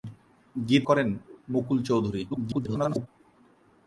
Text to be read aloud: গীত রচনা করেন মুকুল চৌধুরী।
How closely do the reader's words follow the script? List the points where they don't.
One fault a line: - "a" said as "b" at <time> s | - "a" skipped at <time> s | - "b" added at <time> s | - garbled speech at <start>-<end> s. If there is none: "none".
- "রচনা" skipped at 0.8 s
- garbled speech at 2.3-3.1 s